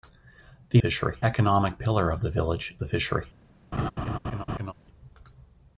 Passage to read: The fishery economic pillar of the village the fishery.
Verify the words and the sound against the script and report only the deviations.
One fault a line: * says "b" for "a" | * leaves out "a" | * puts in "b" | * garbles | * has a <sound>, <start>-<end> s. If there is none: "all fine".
* has a laugh, 3.7-4.7 s